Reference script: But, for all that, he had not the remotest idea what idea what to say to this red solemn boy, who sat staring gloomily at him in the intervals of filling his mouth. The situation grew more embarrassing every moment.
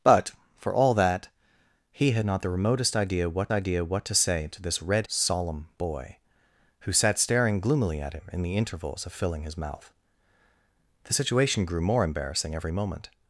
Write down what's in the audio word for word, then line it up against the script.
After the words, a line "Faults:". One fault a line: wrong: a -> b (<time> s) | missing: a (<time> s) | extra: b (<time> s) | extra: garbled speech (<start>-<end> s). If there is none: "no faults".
But, for all that, he had not the remotest idea what idea what to say to this red solemn boy, who sat staring gloomily at him in the intervals of filling his mouth. The situation grew more embarrassing every moment.
Faults:
no faults